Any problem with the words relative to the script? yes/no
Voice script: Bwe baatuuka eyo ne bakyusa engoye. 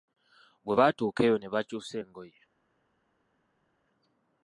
no